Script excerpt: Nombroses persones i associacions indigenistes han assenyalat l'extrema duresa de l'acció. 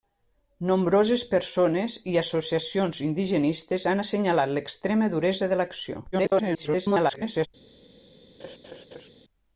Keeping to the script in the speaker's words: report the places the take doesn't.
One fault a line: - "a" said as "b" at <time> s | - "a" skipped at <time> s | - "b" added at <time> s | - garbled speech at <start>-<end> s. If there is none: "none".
- garbled speech at 6.1-7.5 s